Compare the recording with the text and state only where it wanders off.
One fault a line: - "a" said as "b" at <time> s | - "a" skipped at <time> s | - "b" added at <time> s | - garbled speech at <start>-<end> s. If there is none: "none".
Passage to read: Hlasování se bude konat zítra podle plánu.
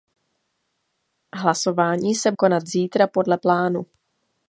- "bude" skipped at 2.3 s